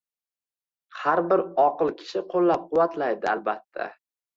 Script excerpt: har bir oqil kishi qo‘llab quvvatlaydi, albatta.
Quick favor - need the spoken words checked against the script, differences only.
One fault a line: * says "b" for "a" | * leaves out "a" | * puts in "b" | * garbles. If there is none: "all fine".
all fine